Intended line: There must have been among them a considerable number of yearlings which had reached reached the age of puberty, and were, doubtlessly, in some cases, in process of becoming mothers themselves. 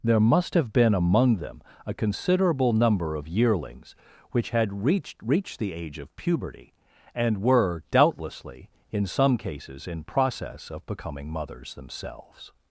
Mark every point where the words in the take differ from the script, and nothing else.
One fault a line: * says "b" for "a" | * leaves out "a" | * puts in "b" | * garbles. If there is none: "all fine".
all fine